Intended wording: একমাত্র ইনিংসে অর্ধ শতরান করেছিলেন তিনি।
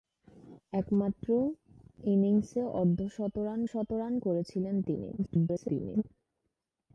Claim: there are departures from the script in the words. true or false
true